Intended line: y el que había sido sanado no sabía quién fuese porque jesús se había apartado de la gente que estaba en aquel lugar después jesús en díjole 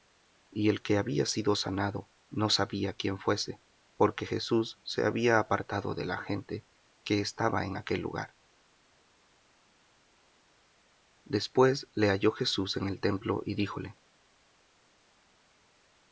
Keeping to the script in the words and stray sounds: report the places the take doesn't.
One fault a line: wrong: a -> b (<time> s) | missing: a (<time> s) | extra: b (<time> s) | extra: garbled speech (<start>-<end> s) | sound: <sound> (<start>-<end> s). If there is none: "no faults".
extra: le halló (11.9 s)
extra: el templo y (12.9 s)